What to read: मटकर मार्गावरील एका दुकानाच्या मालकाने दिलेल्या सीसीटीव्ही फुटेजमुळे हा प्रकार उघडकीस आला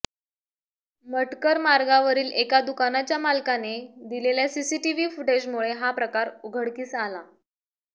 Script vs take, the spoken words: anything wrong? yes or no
no